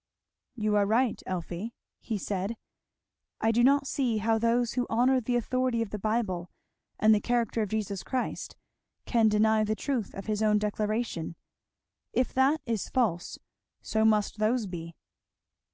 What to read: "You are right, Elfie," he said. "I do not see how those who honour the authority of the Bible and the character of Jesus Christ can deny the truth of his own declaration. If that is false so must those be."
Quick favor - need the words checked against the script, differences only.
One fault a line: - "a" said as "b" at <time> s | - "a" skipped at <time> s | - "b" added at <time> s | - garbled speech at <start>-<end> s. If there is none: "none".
none